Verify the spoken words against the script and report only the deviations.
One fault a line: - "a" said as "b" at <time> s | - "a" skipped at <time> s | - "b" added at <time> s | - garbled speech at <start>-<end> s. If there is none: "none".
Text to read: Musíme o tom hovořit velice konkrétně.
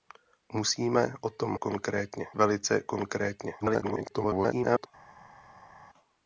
- "hovořit" said as "konkrétně" at 1.5 s
- garbled speech at 3.6-4.9 s